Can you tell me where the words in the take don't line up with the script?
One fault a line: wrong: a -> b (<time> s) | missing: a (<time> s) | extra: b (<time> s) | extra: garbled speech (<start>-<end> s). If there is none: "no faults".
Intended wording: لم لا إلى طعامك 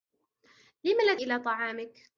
no faults